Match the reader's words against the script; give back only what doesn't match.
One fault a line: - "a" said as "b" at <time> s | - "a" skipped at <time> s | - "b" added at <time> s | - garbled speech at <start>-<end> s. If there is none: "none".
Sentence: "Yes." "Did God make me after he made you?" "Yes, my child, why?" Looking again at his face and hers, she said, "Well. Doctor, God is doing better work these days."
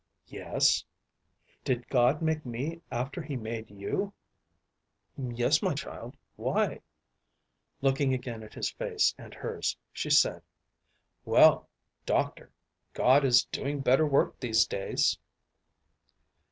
none